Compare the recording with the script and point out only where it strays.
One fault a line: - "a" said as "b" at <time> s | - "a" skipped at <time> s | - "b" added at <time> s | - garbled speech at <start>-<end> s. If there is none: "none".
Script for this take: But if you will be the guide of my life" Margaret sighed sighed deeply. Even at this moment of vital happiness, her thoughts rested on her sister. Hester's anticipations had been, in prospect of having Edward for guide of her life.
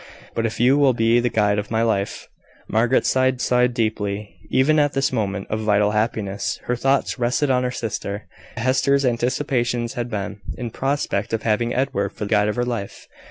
none